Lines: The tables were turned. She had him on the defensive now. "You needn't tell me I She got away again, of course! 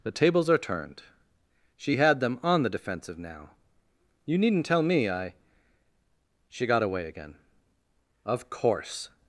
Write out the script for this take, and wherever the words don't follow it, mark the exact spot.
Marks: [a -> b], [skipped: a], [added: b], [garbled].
The tables [were -> are] turned. She had [him -> them] on the defensive now. "You needn't tell me I She got away again, of course!